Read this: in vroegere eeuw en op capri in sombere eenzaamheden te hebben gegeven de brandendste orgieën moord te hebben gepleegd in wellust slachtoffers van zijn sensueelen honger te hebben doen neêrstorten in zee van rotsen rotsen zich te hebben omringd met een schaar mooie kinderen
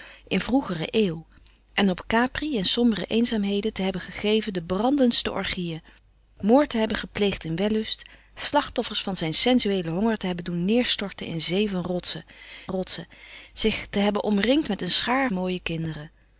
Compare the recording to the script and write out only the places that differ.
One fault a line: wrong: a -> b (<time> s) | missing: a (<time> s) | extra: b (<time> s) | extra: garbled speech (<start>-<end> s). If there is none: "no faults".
no faults